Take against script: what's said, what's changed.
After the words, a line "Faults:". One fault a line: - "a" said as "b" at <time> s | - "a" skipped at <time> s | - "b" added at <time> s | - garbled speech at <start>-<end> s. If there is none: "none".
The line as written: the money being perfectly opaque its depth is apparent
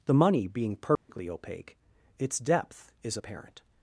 the money being perfectly opaque its depth is apparent
Faults:
none